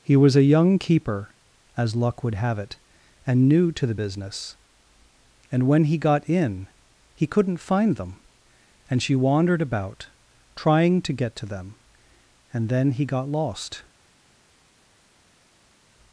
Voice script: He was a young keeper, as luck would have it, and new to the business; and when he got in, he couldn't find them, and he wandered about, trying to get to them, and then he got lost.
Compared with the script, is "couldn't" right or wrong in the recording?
right